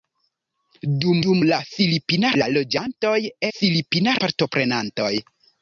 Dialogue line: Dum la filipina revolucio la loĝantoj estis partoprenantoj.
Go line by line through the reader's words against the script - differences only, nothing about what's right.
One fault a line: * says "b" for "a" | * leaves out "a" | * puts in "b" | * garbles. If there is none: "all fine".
* puts in "dum"
* leaves out "revolucio"
* says "filipina" for "estis"